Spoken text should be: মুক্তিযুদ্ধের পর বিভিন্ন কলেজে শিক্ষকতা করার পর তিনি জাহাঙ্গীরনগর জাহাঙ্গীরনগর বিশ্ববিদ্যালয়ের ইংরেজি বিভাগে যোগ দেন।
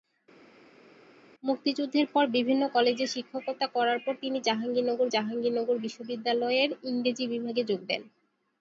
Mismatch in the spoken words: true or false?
false